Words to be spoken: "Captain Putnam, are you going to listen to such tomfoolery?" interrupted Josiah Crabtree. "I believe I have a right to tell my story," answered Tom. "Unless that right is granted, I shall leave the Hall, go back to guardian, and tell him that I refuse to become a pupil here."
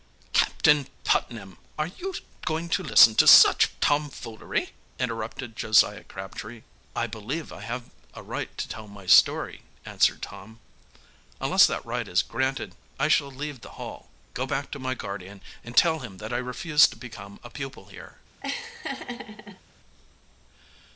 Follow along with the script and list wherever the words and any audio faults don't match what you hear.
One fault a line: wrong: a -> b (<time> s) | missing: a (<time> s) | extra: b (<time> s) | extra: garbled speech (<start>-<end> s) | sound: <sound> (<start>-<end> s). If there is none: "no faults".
extra: my (14.8 s)
sound: laugh (18.4-19.6 s)